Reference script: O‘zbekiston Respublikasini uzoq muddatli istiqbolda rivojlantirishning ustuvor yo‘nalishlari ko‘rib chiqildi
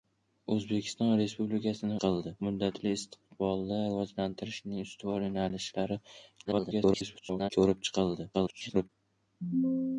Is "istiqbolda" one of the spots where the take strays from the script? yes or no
no